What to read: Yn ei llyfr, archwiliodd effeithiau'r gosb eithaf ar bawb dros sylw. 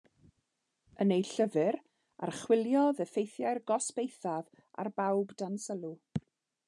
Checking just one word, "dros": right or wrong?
wrong